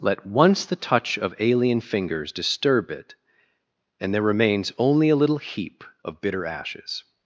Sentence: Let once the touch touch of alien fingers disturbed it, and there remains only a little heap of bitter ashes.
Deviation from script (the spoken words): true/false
true